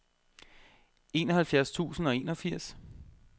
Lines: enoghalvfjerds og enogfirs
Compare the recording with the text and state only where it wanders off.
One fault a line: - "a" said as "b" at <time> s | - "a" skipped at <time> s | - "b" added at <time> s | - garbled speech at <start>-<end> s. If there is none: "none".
- "tusind" added at 1.7 s